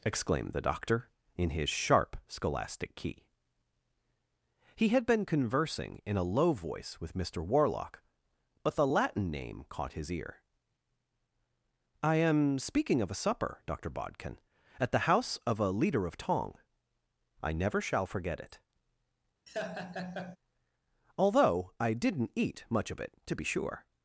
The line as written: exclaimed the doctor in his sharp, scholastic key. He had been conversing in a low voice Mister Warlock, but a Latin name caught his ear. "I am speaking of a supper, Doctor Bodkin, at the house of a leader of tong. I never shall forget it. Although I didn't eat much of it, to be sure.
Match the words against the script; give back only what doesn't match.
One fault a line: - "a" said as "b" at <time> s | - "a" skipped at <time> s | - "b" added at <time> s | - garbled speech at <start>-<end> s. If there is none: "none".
- "with" added at 7.0 s
- "a" said as "the" at 8.8 s